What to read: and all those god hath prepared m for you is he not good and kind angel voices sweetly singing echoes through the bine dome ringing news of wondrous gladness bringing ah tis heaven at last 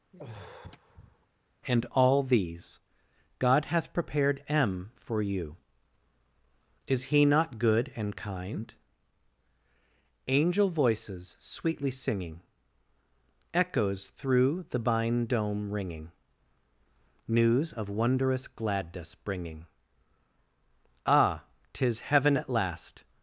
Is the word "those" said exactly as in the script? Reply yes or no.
no